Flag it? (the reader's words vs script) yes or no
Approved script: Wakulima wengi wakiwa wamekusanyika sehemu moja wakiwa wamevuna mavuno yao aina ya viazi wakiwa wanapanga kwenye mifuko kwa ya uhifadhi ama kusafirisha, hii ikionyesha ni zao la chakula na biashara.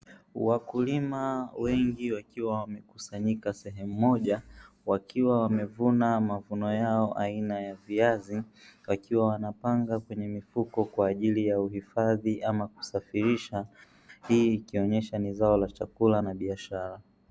yes